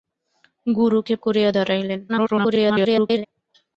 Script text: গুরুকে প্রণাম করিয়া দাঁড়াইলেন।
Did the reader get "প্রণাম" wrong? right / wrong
wrong